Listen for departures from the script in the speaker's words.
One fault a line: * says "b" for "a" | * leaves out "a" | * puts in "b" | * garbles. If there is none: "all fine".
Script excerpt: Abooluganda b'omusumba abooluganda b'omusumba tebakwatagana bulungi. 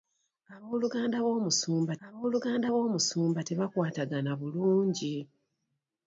all fine